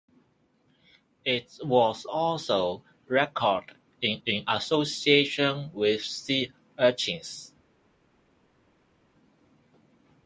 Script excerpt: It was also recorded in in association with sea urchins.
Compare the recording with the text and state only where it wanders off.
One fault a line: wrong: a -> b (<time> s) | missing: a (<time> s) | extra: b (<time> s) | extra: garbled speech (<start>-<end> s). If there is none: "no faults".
no faults